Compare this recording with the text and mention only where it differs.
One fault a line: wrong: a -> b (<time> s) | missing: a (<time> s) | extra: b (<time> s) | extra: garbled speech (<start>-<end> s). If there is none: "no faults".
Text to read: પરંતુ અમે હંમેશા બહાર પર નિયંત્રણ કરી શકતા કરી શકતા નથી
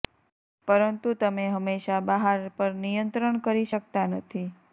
wrong: અમે -> તમે (1.1 s)
missing: કરી શકતા (4.1 s)